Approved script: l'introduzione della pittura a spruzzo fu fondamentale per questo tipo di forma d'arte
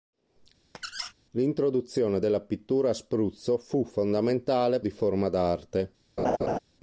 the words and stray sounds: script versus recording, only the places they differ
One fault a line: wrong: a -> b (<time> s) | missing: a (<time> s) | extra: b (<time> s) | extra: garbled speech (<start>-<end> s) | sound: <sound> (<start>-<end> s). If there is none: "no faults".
sound: squeak (0.7-1.1 s)
missing: per questo tipo (4.8 s)
sound: laugh (6.2-6.6 s)